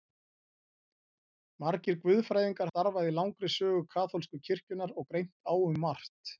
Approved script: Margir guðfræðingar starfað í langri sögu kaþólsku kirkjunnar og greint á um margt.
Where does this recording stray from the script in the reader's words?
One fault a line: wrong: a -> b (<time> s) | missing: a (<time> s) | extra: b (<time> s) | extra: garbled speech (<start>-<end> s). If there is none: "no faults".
no faults